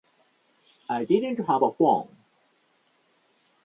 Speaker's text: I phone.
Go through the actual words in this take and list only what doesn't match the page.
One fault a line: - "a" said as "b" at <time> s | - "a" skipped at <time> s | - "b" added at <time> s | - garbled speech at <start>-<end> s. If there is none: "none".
- "didn't have a" added at 1.0 s